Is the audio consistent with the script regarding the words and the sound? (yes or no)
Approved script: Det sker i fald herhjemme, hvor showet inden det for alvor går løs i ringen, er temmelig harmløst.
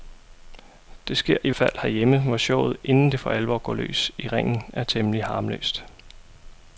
yes